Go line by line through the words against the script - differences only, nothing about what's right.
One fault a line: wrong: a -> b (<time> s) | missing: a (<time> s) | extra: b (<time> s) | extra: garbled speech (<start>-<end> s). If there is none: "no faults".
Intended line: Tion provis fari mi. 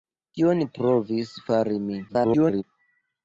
extra: garbled speech (2.1-2.6 s)